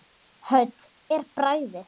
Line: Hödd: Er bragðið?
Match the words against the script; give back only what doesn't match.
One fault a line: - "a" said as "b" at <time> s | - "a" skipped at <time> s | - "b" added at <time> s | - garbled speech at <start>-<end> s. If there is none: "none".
none